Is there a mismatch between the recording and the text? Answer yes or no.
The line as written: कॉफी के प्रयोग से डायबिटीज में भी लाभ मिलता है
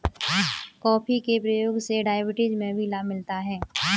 no